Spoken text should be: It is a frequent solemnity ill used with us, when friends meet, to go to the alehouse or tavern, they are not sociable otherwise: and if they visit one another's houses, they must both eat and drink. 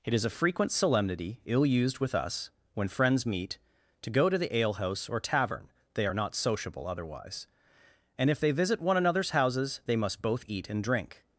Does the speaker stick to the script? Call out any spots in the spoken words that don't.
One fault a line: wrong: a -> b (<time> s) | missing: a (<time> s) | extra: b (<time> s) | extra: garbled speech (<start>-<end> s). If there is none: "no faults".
no faults